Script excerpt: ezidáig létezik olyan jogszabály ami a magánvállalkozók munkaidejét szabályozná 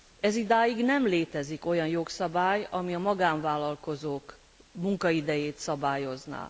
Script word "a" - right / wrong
right